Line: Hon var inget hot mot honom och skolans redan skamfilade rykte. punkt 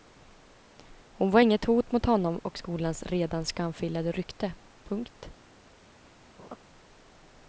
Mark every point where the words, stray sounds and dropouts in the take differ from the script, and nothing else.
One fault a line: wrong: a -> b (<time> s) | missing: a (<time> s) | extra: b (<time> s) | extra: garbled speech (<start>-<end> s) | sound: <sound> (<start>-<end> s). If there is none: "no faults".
sound: laugh (6.4-6.6 s)